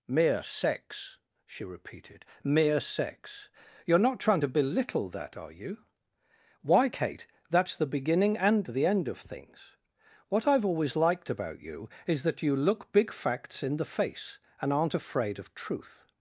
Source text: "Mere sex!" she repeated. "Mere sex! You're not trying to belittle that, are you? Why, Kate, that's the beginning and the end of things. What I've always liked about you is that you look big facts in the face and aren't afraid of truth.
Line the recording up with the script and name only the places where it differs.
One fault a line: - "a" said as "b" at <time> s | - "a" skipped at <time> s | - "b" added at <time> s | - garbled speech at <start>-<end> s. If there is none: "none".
none